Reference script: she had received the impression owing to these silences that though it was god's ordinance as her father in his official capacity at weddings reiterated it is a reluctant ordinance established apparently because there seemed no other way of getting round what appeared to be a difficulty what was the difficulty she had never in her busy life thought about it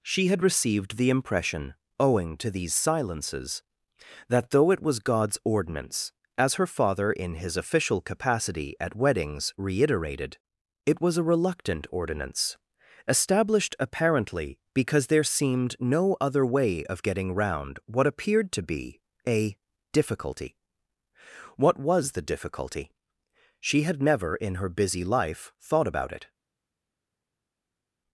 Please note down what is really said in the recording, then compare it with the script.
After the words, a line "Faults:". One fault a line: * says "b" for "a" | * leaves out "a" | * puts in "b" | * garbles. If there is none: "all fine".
she had received the impression owing to these silences that though it was god's ordinance as her father in his official capacity at weddings reiterated it was a reluctant ordinance established apparently because there seemed no other way of getting round what appeared to be a difficulty what was the difficulty she had never in her busy life thought about it
Faults:
* says "was" for "is"